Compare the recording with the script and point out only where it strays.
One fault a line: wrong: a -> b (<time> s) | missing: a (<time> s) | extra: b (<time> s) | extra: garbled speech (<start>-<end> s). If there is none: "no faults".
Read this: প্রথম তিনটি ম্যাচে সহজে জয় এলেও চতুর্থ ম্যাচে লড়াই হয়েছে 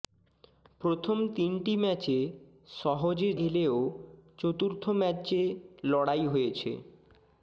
missing: জয় (3.3 s)